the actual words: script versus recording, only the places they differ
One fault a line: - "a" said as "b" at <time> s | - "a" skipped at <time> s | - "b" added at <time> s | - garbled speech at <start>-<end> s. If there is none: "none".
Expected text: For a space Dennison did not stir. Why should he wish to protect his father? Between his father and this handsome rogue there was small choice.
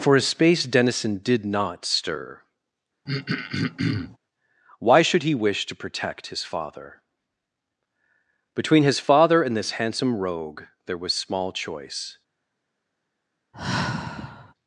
none